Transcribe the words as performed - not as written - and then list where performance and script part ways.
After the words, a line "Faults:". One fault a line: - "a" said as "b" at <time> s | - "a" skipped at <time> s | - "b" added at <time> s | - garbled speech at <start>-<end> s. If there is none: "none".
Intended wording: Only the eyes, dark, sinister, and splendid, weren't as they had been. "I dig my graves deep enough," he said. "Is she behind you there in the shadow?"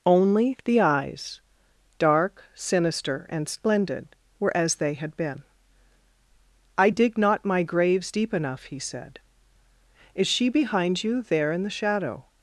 Only the eyes, dark, sinister, and splendid, were as they had been. "I dig not my graves deep enough," he said. "Is she behind you there in the shadow?"
Faults:
- "weren't" said as "were" at 4.4 s
- "not" added at 7.2 s